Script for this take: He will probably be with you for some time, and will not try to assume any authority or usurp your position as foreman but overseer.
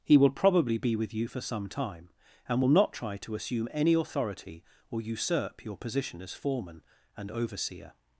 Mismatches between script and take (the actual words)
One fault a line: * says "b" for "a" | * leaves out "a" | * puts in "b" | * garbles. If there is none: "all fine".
* says "and" for "but"